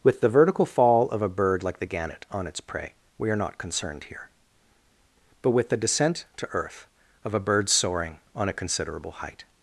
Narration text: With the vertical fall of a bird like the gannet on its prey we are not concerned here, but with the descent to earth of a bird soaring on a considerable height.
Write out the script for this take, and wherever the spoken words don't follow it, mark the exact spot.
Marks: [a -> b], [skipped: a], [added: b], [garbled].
With the vertical fall of a bird like the gannet on its prey we are not concerned here, but with the descent to earth of a bird soaring on a considerable height.